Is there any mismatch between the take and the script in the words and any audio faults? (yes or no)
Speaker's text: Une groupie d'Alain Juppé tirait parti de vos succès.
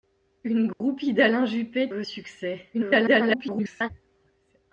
yes